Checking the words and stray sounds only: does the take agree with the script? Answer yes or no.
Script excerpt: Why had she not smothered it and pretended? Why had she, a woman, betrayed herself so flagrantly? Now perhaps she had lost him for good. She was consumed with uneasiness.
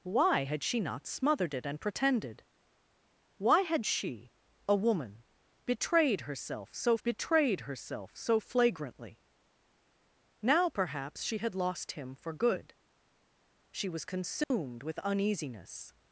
no